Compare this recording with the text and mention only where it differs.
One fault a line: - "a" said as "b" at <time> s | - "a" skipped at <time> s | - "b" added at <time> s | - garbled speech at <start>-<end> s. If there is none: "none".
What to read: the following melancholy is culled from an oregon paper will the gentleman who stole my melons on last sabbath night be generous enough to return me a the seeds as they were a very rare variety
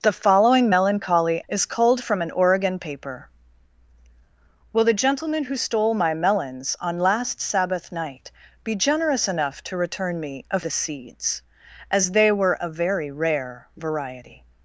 none